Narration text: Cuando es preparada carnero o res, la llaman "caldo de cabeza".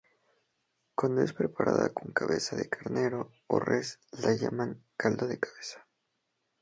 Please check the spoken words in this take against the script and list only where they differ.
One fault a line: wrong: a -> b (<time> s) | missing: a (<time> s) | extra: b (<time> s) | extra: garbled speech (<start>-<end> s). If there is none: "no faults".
extra: con cabeza de (1.9 s)